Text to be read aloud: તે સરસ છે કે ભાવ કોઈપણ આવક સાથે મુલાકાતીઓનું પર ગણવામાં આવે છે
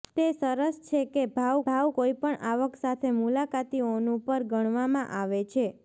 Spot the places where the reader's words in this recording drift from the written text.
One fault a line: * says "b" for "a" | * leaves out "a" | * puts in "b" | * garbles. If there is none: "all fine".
* puts in "ભાવ"